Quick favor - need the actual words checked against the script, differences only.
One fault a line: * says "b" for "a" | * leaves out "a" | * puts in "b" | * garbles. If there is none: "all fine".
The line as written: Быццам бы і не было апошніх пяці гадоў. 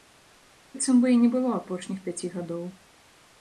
all fine